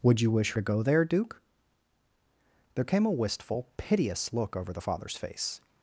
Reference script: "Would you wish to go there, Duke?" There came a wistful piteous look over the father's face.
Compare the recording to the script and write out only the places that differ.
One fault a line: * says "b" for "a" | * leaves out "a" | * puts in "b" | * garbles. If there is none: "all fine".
all fine